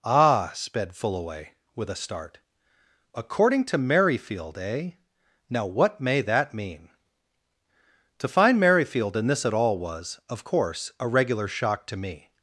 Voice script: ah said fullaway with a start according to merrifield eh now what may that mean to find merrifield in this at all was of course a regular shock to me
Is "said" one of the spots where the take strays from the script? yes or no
yes